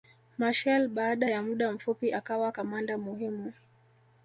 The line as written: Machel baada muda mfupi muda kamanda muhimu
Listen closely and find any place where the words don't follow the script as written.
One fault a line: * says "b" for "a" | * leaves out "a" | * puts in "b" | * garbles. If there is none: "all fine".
* puts in "ya"
* says "akawa" for "muda"